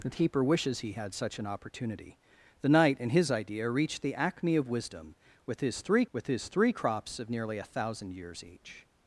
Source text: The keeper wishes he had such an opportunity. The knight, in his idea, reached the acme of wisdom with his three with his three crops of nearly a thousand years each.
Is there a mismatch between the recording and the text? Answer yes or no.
no